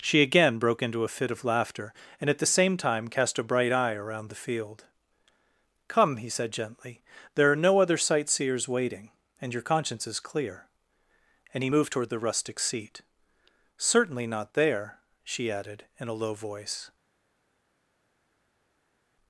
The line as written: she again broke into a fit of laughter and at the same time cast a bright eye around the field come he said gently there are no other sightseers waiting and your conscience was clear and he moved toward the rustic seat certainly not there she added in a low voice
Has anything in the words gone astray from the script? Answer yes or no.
yes